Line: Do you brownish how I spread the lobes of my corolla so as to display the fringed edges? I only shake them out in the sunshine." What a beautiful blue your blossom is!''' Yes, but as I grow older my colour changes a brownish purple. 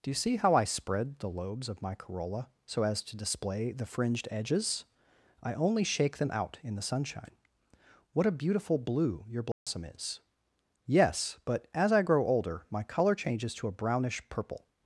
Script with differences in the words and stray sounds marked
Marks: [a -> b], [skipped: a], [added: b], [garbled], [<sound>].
Do you [brownish -> see] how I spread the lobes of my corolla so as to display the fringed edges? I only shake them out in the sunshine." What a beautiful blue your blossom [dropout] is!''' Yes, but as I grow older my colour changes [added: to] a brownish purple.